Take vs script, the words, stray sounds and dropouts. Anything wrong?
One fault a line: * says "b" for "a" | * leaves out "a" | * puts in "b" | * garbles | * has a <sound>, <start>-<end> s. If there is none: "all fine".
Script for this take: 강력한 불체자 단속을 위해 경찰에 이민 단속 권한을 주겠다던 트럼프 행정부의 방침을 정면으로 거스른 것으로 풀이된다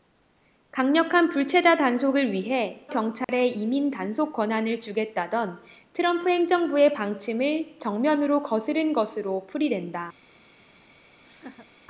* has a dropout, 3.2-3.3 s
* has a laugh, 11.2-11.7 s